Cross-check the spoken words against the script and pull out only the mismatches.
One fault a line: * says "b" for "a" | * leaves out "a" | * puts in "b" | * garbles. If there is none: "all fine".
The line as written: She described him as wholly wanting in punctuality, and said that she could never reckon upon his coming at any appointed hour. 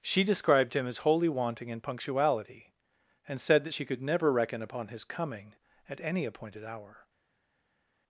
all fine